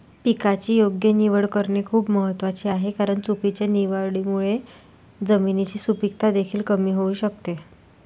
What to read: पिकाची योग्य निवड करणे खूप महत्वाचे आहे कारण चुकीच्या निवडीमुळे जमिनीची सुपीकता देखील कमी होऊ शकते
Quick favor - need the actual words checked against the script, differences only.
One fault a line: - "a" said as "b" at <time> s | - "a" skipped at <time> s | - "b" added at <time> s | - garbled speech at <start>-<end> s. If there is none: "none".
none